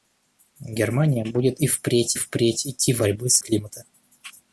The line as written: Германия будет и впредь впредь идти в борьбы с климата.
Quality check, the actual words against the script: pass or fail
pass